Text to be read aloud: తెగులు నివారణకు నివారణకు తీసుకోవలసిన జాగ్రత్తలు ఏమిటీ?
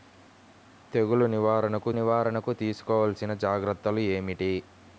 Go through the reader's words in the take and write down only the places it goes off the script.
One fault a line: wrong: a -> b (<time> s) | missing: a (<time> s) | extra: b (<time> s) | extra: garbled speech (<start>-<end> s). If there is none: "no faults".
no faults